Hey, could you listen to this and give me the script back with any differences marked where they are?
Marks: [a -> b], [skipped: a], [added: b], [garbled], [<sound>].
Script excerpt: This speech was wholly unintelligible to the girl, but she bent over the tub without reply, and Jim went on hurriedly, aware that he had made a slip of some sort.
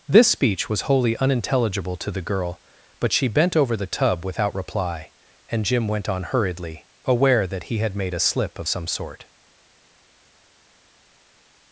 This speech was wholly unintelligible to the girl, but she bent over the tub without reply, and Jim went on hurriedly, aware that he had made a slip of some sort.